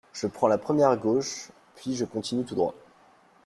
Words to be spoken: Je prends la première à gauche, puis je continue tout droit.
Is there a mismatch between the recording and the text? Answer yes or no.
no